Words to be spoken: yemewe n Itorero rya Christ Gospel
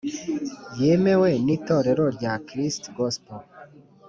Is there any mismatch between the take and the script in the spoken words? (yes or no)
no